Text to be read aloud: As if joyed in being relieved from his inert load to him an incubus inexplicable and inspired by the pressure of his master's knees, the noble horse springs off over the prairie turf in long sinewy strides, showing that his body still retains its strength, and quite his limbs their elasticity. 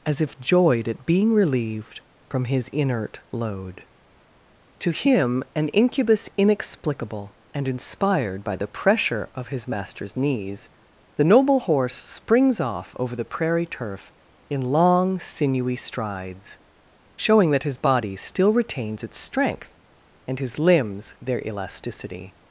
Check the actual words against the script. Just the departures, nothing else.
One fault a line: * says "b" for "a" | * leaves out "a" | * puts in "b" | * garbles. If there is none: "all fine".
* says "at" for "in"
* leaves out "quite"